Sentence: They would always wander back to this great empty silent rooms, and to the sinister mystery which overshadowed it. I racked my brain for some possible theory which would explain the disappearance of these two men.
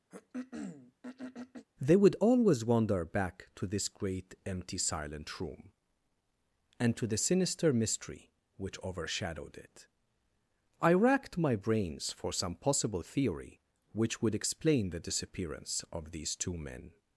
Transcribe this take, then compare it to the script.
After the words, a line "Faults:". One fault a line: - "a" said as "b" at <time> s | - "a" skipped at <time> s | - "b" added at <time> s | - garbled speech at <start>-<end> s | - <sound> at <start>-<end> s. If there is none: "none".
They would always wander back to this great empty silent room, and to the sinister mystery which overshadowed it. I racked my brains for some possible theory which would explain the disappearance of these two men.
Faults:
- throat clearing at 0.1-1.7 s
- "rooms" said as "room" at 5.4 s
- "brain" said as "brains" at 11.5 s